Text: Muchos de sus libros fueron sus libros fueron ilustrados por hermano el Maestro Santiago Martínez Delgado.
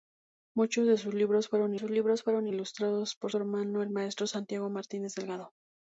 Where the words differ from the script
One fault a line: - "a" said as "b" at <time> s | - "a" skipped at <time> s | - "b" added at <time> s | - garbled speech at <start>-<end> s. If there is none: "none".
none